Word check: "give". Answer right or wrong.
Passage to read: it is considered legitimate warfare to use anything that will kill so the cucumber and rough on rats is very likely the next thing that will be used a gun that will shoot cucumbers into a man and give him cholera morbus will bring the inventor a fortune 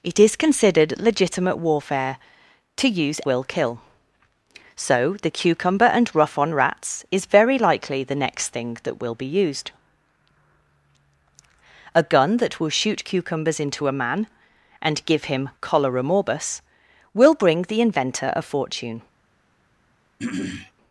right